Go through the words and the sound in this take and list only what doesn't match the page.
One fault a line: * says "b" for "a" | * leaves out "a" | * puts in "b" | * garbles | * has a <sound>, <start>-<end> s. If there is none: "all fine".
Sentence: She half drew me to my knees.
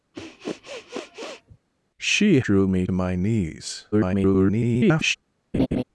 * has a sniff, 0.1-1.6 s
* leaves out "half"
* leaves out "to"
* garbles
* has a laugh, 5.5-5.8 s